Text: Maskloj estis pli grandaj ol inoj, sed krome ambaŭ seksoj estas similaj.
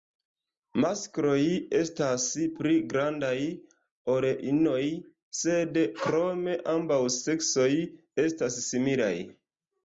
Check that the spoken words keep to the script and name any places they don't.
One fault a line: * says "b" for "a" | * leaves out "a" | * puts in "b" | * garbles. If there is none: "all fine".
* says "estas" for "estis"